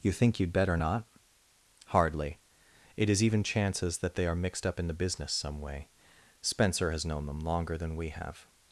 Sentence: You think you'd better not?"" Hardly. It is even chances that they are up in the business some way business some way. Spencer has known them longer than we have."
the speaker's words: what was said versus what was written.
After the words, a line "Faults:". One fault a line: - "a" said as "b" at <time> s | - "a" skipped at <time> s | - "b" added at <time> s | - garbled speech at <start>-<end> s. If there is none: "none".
You think you'd better not?"" Hardly. It is even chances that they are mixed up in the business some way. Spencer has known them longer than we have."
Faults:
- "mixed" added at 4.4 s
- "business some way" skipped at 5.9 s